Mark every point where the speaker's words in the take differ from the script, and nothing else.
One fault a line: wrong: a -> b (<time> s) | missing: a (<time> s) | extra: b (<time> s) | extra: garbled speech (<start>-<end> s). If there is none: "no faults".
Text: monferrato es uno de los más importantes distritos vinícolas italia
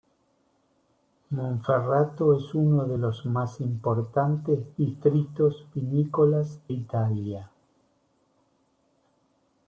no faults